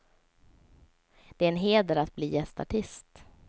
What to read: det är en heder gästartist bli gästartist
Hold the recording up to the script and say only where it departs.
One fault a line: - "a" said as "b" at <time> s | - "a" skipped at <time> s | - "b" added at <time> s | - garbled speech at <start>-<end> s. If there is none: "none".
- "gästartist" said as "att" at 1.9 s